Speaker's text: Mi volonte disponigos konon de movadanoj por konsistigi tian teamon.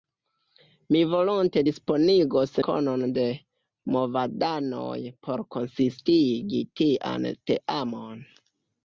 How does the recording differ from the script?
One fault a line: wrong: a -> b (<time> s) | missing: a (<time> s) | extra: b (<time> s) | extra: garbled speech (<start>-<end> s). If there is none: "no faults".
no faults